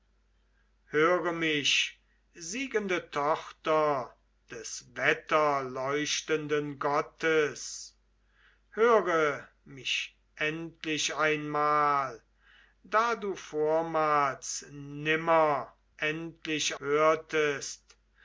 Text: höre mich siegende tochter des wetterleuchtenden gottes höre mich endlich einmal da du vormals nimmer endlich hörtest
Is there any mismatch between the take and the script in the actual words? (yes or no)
no